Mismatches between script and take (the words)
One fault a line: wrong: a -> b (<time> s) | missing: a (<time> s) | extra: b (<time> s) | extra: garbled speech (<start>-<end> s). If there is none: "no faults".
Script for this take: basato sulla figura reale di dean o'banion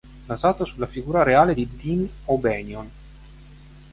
no faults